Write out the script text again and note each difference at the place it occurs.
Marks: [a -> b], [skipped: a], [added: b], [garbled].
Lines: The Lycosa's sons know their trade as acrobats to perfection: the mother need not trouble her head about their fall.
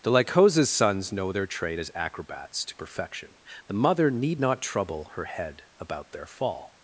The Lycosa's sons know their trade as acrobats to perfection: the mother need not trouble her head about their fall.